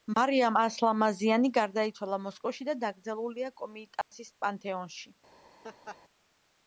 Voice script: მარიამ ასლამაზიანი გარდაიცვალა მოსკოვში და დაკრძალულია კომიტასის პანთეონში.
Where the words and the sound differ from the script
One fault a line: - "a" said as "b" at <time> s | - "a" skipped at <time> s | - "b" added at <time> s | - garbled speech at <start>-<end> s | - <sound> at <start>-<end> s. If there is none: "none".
- dropout at 4.0-4.1 s
- laugh at 5.6-6.0 s